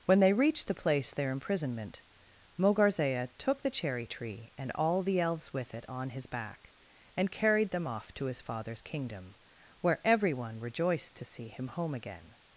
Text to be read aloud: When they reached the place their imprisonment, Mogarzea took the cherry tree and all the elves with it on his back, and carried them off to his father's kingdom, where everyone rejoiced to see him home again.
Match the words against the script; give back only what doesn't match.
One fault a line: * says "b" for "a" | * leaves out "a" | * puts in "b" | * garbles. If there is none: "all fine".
all fine